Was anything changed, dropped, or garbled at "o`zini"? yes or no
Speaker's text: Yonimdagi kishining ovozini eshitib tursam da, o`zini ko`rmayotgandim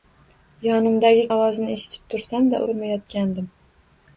yes